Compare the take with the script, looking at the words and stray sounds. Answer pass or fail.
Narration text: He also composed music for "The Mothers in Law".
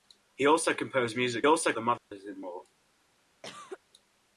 fail